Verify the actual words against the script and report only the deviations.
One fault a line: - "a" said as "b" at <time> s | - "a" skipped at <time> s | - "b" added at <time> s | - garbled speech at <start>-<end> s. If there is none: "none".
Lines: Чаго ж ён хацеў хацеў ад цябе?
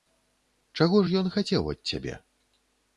- "хацеў" skipped at 1.6 s